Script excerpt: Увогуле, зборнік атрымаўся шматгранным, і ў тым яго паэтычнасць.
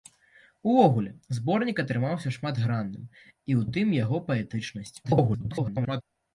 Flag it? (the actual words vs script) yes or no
yes